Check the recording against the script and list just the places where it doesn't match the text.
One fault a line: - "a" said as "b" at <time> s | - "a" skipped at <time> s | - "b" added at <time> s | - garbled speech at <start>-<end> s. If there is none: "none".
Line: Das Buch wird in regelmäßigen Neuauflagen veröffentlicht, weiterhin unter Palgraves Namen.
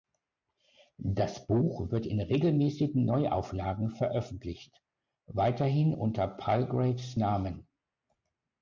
none